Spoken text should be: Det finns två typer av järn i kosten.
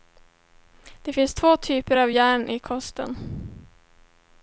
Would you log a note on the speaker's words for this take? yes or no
no